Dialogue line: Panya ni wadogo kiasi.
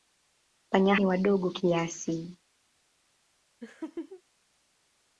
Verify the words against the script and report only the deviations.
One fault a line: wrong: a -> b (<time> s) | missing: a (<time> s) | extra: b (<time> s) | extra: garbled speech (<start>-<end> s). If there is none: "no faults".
no faults